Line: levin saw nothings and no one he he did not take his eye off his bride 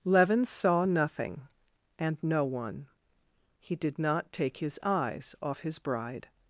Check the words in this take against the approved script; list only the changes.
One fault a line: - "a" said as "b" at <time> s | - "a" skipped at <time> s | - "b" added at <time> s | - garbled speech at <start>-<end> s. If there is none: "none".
- "nothings" said as "nothing" at 0.8 s
- "he" skipped at 3.7 s
- "eye" said as "eyes" at 4.8 s